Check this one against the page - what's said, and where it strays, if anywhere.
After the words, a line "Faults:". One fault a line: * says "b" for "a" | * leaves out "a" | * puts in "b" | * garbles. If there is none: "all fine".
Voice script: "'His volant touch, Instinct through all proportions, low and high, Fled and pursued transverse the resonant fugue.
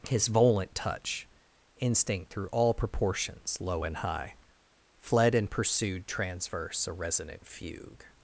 "'His volant touch, Instinct through all proportions, low and high, Fled and pursued transverse a resonant fugue.
Faults:
* says "a" for "the"